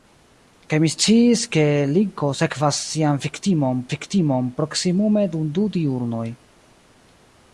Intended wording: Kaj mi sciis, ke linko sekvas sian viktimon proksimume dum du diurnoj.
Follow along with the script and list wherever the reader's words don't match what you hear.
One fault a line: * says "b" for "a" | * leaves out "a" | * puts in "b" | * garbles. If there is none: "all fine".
* puts in "viktimon"